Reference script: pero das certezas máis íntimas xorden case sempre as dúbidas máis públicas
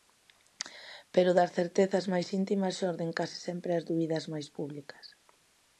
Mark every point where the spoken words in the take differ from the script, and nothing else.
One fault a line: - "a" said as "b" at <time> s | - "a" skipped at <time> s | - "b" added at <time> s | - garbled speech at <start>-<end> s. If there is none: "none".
none